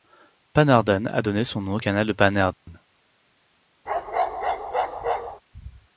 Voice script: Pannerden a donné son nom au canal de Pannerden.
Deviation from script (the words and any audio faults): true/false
true